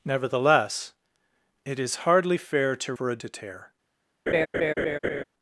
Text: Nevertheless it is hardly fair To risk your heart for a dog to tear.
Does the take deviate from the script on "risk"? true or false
true